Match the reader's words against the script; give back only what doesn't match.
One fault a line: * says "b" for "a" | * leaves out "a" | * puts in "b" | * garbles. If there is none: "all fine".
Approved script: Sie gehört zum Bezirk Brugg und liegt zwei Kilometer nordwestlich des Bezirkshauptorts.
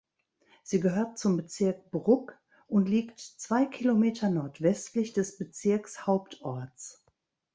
all fine